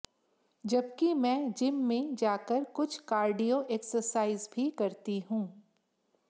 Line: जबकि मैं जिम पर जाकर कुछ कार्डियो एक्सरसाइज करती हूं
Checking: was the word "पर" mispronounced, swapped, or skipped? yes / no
yes